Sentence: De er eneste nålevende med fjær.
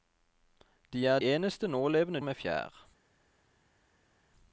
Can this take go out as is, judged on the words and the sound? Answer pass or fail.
pass